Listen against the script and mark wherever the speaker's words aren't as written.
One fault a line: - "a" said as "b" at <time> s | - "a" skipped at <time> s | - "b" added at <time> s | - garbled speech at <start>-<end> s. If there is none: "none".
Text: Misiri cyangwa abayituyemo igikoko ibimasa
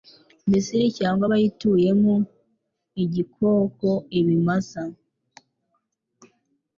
none